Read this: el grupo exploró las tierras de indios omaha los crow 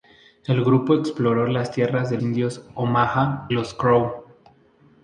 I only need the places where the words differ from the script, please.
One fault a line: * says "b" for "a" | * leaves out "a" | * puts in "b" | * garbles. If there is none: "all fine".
all fine